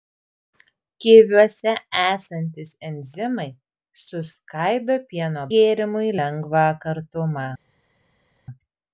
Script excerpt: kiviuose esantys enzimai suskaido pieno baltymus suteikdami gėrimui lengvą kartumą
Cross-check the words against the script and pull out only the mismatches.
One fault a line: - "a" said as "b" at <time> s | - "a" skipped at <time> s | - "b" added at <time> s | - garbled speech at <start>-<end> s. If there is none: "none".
- "baltymus suteikdami" skipped at 5.4 s